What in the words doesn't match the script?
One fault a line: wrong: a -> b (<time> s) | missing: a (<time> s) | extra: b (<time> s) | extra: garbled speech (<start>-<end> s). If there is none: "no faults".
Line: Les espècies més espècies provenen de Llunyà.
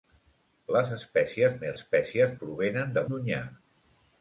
no faults